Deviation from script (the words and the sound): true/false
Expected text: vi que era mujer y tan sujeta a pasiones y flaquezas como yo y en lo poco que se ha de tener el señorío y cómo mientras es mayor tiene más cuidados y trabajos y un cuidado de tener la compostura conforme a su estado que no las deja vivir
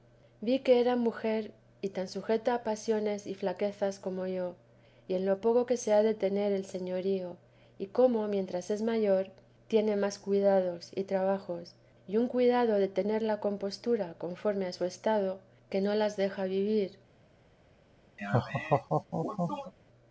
true